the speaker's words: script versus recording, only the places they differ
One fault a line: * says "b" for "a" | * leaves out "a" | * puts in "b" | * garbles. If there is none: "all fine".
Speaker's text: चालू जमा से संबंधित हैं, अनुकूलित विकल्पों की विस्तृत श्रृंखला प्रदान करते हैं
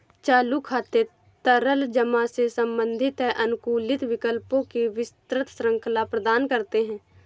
* puts in "खाते तरल"